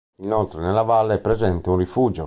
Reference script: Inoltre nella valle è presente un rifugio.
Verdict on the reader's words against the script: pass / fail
pass